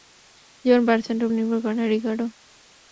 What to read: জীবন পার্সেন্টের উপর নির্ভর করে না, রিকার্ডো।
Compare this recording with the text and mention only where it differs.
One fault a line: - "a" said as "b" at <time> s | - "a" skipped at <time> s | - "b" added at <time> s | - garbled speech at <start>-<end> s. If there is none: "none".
- "উপর" skipped at 1.3 s